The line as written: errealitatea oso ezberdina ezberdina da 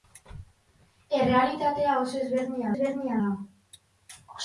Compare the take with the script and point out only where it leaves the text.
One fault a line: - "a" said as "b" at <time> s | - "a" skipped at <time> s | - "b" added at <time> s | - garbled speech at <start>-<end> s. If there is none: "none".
none